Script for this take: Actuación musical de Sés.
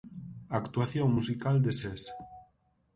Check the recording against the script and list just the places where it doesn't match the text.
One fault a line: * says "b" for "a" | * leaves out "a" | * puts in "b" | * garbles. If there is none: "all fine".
all fine